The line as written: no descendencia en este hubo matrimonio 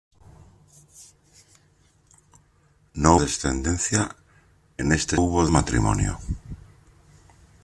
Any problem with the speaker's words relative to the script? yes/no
no